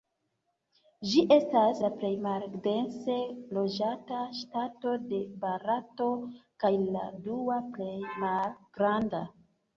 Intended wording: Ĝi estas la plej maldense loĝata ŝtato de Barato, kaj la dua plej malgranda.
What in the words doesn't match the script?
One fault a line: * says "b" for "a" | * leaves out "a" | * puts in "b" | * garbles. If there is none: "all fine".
all fine